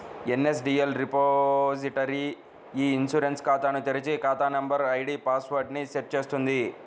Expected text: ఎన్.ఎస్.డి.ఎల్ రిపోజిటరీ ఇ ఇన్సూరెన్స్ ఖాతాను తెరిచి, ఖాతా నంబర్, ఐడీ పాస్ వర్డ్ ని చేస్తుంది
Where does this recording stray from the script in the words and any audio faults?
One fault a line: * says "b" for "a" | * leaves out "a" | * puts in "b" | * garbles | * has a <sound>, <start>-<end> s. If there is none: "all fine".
* puts in "సెట్"